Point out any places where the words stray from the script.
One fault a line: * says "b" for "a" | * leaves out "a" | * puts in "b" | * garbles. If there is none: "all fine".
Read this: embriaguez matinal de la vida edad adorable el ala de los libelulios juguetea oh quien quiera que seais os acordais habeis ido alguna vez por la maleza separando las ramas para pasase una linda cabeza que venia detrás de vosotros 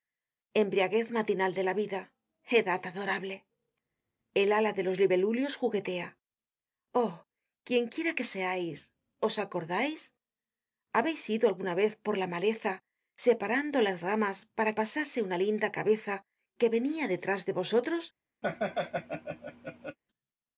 all fine